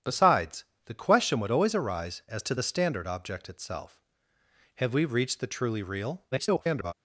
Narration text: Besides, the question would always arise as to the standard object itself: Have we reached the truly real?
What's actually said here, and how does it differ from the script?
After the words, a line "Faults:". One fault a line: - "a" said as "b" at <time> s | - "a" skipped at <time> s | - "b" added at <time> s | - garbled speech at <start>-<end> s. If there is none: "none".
Besides, the question would always arise as to the standard object itself: Have we reached the truly real? [garbled]
Faults:
- garbled speech at 6.3-6.9 s